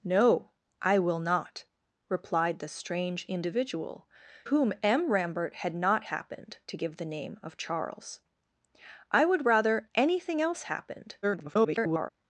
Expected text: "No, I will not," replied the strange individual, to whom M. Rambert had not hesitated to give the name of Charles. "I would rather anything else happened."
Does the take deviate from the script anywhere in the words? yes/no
yes